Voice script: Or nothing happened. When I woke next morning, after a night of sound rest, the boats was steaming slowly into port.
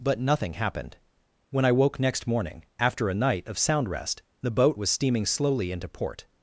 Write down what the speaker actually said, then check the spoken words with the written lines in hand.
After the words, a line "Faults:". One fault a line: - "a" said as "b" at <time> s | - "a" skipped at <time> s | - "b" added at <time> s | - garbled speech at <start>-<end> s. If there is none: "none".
But nothing happened. When I woke next morning, after a night of sound rest, the boat was steaming slowly into port.
Faults:
- "Or" said as "But" at 0.0 s
- "boats" said as "boat" at 4.5 s